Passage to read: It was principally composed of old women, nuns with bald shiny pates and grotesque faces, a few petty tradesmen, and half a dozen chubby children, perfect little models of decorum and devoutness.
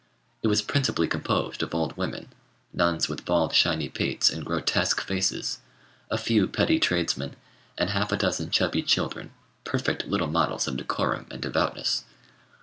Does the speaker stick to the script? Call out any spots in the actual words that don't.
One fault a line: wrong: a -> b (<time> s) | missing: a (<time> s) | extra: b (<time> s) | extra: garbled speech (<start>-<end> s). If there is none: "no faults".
no faults